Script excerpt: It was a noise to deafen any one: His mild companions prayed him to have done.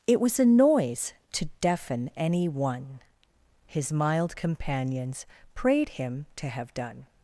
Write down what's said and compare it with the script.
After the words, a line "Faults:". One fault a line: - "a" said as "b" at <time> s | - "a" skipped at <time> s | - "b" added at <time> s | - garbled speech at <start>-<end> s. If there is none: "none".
It was a noise to deafen any one: His mild companions prayed him to have done.
Faults:
none